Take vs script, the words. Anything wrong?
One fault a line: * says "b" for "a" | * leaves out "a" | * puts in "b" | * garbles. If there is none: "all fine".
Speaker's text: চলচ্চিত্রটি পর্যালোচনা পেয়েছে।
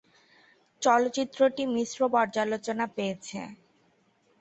* puts in "মিশ্র"